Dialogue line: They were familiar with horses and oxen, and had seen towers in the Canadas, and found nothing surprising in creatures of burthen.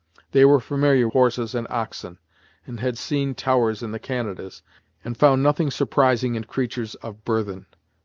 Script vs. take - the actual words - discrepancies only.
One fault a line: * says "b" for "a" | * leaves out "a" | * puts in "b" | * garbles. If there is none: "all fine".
* leaves out "with"